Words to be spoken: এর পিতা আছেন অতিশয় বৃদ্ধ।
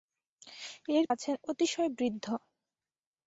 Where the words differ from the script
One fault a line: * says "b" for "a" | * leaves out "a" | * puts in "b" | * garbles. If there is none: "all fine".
* leaves out "পিতা"